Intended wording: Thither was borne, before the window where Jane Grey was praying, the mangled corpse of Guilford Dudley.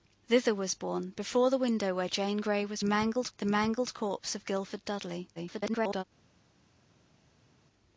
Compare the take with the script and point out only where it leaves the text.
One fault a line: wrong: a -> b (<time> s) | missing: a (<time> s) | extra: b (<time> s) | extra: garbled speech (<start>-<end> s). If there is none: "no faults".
wrong: praying -> mangled (2.8 s)
extra: garbled speech (5.4-6.0 s)